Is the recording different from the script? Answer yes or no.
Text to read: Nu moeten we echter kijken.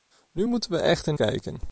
no